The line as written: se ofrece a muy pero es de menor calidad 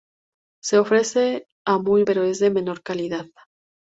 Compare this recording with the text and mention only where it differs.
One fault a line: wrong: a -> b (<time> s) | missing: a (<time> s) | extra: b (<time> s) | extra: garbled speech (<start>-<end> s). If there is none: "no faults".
no faults